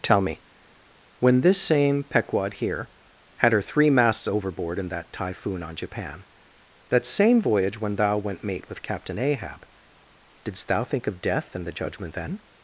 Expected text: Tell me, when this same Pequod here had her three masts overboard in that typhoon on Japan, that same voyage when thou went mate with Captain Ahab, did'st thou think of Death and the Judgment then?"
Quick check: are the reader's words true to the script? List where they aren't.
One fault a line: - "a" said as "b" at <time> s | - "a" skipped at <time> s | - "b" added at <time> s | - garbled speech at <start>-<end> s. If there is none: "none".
none